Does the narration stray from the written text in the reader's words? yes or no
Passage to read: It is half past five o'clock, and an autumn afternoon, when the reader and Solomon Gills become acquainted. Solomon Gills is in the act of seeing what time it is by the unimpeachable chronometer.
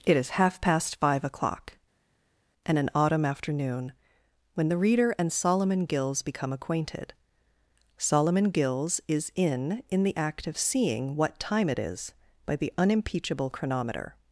yes